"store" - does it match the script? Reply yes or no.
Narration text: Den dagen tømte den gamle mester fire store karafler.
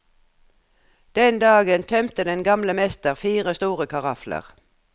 yes